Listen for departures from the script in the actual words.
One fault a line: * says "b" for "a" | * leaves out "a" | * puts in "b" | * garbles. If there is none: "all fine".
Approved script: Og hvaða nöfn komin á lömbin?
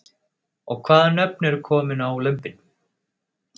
* puts in "eru"